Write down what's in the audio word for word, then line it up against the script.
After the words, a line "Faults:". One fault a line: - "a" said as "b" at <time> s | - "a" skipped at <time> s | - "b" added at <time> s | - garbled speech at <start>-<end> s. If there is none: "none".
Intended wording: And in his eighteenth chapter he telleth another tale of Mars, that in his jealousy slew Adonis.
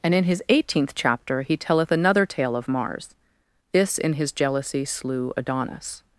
And in his eighteenth chapter he telleth another tale of Mars, this in his jealousy slew Adonis.
Faults:
- "that" said as "this" at 3.7 s